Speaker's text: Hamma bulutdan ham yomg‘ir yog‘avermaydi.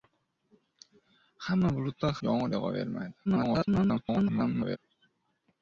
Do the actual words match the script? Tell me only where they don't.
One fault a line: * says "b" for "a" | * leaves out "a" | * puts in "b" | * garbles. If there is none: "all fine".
* leaves out "ham"
* garbles